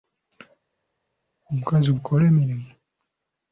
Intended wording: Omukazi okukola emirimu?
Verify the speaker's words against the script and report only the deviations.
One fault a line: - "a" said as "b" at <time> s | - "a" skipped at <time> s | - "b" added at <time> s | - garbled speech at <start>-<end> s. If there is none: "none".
none